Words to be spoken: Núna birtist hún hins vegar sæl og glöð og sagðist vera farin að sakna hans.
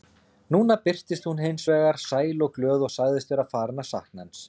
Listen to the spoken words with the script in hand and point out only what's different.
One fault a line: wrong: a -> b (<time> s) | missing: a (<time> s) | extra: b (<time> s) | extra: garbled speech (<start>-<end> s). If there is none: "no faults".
no faults